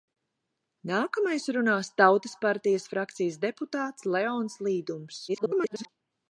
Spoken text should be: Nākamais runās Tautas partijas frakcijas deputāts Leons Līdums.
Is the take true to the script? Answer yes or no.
no